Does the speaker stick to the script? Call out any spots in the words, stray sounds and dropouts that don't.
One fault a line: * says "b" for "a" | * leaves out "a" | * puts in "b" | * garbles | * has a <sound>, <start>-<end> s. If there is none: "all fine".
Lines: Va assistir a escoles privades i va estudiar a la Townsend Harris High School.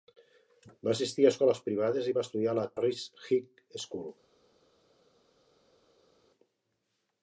* leaves out "Townsend"